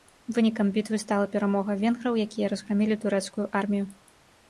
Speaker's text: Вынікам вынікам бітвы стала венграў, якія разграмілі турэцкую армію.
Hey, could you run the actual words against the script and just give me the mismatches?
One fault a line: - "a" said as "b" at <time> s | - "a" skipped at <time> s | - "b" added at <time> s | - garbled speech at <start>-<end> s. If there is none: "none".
- "вынікам" skipped at 0.7 s
- "перамога" added at 1.4 s